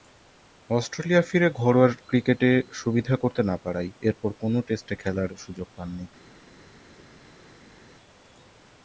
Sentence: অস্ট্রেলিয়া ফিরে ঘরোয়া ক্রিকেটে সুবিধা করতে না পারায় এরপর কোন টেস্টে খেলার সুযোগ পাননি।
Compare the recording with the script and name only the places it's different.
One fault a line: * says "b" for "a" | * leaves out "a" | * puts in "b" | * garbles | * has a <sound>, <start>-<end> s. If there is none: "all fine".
all fine